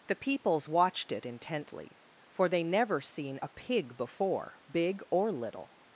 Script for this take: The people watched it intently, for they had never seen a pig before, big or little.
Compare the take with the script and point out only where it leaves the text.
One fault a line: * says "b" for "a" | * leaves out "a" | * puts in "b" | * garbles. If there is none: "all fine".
* says "peoples" for "people"
* leaves out "had"